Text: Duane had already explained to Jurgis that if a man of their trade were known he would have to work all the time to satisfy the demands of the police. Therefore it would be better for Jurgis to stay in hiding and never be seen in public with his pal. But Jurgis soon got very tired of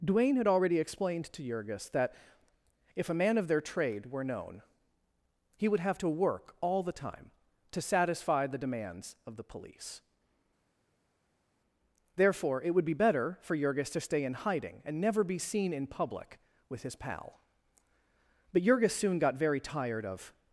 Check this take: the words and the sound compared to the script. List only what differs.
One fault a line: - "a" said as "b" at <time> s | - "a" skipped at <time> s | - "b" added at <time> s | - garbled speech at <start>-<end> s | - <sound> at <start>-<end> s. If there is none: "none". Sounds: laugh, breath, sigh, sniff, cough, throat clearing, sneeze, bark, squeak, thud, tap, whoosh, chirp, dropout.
none